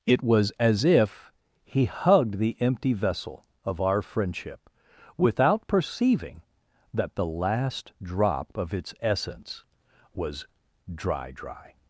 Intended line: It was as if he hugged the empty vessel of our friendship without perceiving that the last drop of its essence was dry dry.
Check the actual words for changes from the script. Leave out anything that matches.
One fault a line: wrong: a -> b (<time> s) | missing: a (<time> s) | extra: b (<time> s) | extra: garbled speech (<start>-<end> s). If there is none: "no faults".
no faults